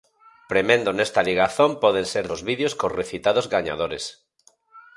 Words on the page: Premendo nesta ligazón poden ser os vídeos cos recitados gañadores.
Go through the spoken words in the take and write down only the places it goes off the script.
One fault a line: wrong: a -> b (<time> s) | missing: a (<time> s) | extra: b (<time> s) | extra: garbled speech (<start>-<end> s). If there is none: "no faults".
no faults